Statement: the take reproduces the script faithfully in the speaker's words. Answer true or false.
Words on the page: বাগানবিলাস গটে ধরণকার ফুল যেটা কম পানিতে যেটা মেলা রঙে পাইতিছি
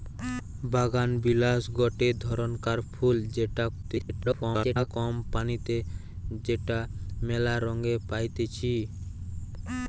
false